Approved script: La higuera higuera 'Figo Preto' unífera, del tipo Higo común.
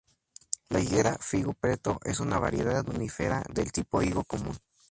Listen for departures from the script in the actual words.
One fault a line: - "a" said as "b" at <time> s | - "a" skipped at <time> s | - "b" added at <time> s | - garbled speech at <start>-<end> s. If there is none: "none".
- "higuera" skipped at 1.1 s
- "es una variedad" added at 2.0 s